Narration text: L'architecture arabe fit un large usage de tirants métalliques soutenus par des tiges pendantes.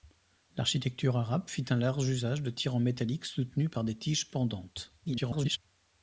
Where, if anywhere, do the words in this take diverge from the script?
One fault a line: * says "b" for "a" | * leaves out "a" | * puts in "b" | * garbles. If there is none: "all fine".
* garbles